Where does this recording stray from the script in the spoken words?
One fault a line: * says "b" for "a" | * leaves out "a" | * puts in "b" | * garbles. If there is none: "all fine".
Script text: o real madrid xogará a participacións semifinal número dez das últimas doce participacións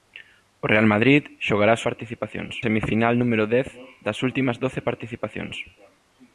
all fine